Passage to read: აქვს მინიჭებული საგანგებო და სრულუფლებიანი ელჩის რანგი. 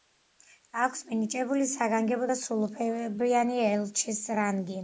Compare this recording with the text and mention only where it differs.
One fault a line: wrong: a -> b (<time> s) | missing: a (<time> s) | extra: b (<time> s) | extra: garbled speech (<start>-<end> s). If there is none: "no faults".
no faults